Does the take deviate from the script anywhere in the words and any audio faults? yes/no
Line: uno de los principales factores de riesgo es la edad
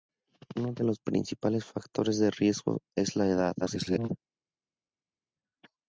yes